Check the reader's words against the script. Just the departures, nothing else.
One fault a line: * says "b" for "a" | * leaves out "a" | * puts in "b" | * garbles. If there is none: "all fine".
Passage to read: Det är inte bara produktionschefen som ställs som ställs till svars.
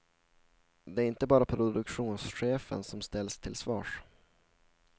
* leaves out "som ställs"